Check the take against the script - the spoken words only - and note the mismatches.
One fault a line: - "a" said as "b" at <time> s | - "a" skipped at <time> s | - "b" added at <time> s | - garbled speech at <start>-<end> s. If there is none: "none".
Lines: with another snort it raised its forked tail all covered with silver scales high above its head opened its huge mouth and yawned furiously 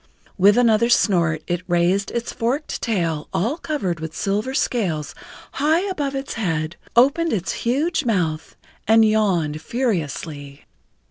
none